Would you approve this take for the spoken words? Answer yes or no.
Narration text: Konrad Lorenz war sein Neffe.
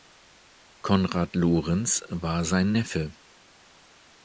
yes